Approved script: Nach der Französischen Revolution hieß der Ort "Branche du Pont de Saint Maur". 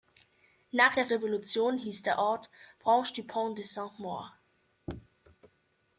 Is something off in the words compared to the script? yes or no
yes